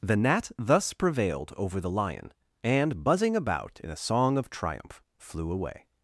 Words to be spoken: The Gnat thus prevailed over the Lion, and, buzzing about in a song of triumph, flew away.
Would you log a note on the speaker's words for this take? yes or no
no